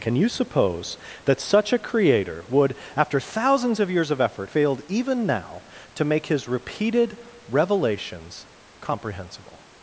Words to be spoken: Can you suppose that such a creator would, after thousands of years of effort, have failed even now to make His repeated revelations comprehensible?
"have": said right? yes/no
no